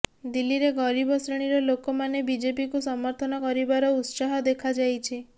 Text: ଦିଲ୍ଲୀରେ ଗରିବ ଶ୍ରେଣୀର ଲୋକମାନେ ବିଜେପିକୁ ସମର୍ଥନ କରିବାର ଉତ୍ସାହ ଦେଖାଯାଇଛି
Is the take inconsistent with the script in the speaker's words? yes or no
no